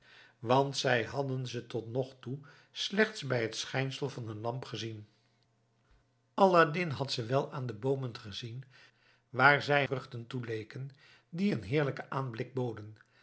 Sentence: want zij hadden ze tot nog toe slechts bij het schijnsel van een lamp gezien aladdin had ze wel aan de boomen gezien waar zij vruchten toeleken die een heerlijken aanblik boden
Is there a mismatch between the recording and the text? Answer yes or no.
no